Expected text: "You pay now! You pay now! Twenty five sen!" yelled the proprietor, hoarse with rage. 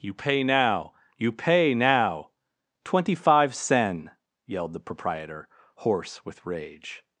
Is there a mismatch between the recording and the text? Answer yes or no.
no